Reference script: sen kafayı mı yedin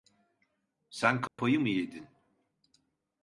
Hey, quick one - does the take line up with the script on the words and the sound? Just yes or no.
no